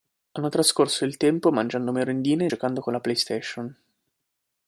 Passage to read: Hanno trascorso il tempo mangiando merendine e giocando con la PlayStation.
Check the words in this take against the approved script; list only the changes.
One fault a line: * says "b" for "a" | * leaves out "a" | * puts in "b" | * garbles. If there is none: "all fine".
all fine